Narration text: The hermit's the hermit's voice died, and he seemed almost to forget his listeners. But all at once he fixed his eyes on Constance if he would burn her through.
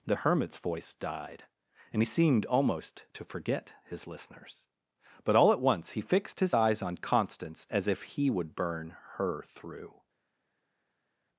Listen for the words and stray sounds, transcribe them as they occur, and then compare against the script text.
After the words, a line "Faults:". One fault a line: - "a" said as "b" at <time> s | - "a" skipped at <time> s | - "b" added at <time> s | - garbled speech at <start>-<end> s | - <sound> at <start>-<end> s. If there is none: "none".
The hermit's voice died, and he seemed almost to forget his listeners. But all at once he fixed his eyes on Constance as if he would burn her through.
Faults:
- "the hermit's" skipped at 0.6 s
- "as" added at 7.7 s